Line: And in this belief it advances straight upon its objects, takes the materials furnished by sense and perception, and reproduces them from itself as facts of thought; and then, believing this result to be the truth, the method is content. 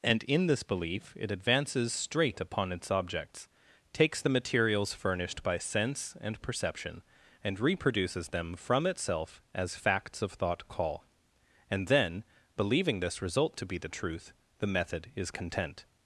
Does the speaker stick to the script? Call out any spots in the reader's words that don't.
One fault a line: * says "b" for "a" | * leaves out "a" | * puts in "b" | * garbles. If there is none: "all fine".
* puts in "call"